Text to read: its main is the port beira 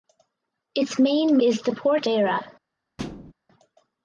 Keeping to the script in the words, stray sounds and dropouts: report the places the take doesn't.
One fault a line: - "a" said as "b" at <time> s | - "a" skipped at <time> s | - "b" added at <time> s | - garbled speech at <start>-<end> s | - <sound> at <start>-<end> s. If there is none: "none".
- thud at 3.0-3.3 s